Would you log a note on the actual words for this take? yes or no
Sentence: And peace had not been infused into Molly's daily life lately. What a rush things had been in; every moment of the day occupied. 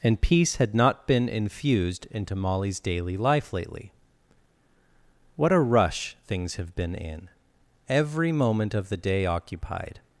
yes